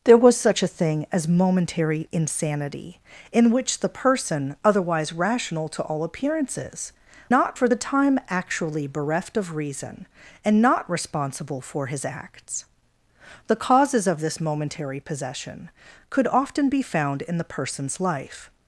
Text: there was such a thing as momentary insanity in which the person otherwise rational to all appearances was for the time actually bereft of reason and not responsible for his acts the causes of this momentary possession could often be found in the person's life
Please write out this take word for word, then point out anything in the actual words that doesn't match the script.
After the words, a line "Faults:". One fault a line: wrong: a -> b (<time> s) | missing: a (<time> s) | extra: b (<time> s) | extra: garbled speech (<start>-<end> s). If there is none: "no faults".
there was such a thing as momentary insanity in which the person otherwise rational to all appearances not for the time actually bereft of reason and not responsible for his acts the causes of this momentary possession could often be found in the person's life
Faults:
wrong: was -> not (7.3 s)